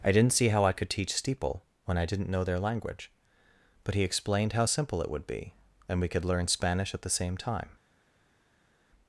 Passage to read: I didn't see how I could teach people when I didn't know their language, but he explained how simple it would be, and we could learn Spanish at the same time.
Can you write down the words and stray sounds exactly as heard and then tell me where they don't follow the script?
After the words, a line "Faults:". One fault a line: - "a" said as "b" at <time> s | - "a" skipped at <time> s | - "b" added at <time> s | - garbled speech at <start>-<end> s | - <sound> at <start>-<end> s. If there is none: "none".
I didn't see how I could teach steeple when I didn't know their language, but he explained how simple it would be, and we could learn Spanish at the same time.
Faults:
- "people" said as "steeple" at 1.1 s